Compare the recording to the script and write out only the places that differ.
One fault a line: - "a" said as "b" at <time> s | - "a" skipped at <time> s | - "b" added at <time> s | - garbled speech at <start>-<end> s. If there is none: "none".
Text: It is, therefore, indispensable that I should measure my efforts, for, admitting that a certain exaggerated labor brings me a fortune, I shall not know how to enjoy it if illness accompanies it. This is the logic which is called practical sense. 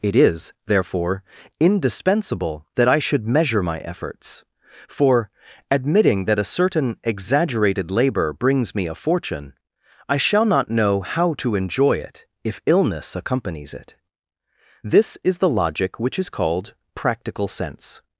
none